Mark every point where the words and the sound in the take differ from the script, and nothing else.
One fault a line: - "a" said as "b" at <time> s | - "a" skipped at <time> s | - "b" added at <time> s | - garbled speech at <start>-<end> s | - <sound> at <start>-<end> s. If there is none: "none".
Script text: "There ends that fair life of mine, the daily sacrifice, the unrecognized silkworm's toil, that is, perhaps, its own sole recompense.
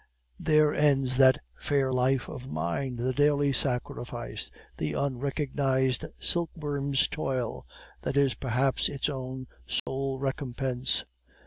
- dropout at 9.8-9.9 s